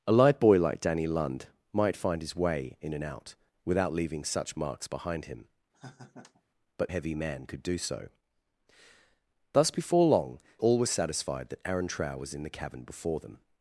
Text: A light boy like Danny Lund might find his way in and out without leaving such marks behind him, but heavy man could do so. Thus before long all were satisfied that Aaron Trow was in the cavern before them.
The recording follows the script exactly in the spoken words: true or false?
true